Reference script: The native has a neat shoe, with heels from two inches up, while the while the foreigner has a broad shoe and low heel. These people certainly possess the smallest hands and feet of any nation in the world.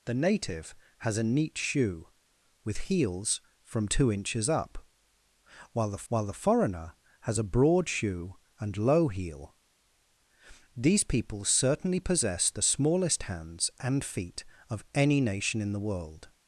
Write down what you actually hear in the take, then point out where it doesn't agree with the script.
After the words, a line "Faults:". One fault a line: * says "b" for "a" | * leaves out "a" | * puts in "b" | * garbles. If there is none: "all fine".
The native has a neat shoe, with heels from two inches up, while the while the foreigner has a broad shoe and low heel. These people certainly possess the smallest hands and feet of any nation in the world.
Faults:
all fine